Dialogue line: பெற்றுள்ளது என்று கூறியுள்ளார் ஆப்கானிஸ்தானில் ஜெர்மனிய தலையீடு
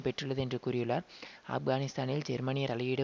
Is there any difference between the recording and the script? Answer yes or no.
no